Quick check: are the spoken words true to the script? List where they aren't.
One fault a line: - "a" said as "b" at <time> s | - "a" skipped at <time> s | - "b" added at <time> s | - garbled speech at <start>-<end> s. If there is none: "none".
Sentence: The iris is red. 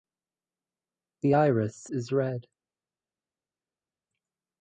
none